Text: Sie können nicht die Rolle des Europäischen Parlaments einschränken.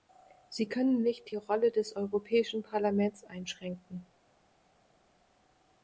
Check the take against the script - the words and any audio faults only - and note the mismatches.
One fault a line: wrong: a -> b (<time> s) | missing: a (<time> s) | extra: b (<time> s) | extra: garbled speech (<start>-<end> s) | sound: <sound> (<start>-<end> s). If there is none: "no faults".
no faults